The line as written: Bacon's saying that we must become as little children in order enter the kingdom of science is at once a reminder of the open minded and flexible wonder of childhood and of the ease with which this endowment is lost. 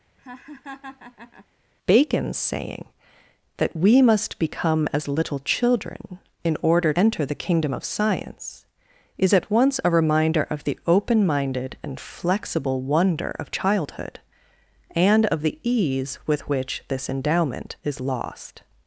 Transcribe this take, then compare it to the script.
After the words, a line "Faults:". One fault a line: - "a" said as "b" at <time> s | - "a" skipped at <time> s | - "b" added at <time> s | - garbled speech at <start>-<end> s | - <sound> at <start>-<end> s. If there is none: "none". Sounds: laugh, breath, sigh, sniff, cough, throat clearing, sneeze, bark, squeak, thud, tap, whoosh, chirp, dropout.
Bacon's saying that we must become as little children in order enter the kingdom of science is at once a reminder of the open minded and flexible wonder of childhood and of the ease with which this endowment is lost.
Faults:
- laugh at 0.2-1.5 s